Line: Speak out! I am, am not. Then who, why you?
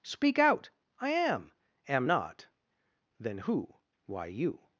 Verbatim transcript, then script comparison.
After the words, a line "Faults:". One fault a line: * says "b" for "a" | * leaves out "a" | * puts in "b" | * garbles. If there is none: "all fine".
Speak out! I am, am not. Then who, why you?
Faults:
all fine